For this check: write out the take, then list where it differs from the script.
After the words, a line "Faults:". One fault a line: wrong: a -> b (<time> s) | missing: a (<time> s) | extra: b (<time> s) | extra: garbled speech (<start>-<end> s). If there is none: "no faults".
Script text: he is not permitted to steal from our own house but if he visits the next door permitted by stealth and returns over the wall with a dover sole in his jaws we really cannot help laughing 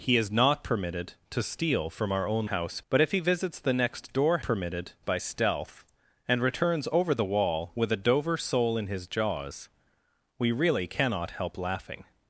he is not permitted to steal from our own house but if he visits the next door permitted by stealth and returns over the wall with a dover sole in his jaws we really cannot help laughing
Faults:
no faults